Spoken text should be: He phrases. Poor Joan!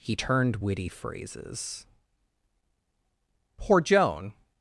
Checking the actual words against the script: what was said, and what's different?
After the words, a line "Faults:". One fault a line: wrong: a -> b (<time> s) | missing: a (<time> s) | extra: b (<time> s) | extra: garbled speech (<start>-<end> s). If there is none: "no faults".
He turned witty phrases. Poor Joan!
Faults:
extra: turned witty (0.1 s)